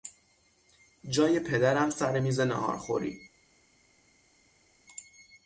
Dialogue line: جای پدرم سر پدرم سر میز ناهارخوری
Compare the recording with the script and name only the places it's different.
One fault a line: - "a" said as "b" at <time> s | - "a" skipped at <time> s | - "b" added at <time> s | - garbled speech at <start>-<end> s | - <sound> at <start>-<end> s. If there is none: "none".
- "پدرم سر" skipped at 2.2 s